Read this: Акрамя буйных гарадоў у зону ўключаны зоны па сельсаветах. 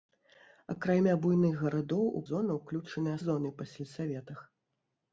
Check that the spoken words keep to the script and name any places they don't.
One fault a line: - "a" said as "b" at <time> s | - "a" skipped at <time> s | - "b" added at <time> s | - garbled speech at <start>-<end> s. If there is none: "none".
none